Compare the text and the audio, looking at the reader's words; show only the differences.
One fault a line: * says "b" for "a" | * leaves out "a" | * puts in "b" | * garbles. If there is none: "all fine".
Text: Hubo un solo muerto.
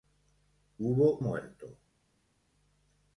* leaves out "un solo"